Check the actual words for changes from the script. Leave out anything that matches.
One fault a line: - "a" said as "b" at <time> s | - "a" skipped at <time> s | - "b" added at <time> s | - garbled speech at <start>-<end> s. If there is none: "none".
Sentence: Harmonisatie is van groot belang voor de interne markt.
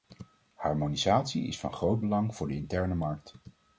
none